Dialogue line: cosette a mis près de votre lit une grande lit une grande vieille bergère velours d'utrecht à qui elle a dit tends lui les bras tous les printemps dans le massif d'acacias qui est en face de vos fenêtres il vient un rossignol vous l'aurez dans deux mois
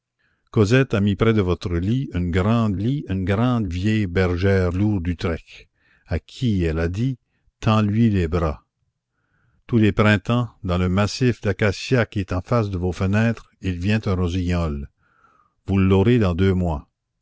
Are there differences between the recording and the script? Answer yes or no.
no